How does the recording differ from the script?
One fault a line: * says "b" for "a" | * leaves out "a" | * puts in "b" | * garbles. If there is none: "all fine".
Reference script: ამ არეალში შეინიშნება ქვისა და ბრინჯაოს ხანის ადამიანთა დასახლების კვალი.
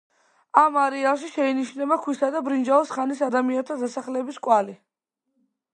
all fine